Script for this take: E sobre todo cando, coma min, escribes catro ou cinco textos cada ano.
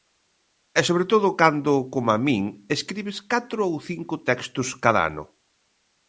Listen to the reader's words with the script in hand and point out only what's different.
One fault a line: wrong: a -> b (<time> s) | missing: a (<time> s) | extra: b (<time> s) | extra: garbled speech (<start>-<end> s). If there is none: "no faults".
no faults